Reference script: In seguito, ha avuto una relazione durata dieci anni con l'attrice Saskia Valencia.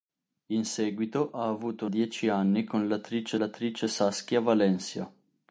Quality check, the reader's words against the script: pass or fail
fail